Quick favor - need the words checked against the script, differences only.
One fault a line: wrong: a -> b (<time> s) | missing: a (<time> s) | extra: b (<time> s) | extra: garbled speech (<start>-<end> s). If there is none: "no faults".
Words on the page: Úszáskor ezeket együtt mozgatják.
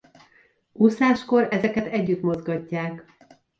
no faults